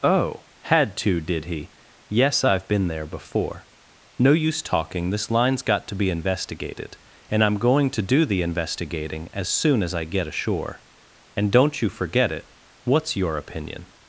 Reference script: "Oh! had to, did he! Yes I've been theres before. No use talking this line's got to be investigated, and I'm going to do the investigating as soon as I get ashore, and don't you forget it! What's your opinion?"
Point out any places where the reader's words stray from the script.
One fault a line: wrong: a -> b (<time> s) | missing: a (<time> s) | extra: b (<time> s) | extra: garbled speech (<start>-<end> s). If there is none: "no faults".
wrong: theres -> there (2.9 s)